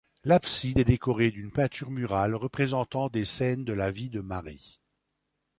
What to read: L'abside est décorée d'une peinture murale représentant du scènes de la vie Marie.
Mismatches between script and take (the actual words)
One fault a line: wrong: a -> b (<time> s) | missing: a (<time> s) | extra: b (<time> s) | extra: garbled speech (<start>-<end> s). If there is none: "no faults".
wrong: du -> des (3.1 s)
extra: de (4.1 s)